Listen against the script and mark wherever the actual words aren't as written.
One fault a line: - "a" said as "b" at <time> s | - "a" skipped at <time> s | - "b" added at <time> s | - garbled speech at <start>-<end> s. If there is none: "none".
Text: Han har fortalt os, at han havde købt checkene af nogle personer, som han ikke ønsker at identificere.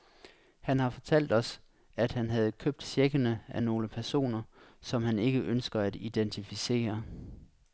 none